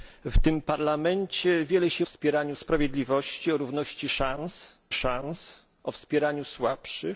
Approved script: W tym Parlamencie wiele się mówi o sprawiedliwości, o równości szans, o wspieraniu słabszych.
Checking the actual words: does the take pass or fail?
fail